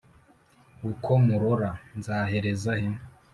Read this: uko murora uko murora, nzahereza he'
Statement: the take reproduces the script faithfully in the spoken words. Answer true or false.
false